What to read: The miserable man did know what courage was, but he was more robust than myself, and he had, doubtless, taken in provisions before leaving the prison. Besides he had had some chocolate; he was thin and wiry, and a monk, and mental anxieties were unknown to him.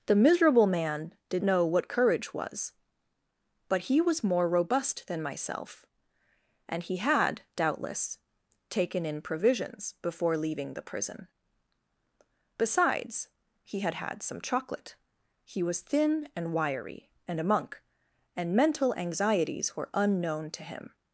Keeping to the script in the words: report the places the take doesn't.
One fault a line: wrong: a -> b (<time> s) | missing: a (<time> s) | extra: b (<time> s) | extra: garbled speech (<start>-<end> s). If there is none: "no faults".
no faults